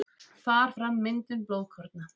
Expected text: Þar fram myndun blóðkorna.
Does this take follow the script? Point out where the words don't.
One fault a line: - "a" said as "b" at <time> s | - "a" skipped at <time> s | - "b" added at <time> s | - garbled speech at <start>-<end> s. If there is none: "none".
none